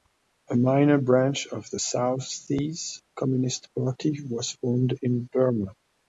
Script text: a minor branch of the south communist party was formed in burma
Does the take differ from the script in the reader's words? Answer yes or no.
yes